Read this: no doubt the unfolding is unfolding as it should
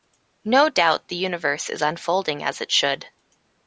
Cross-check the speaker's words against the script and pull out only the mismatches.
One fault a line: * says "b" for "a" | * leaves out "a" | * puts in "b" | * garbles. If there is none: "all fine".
* says "universe" for "unfolding"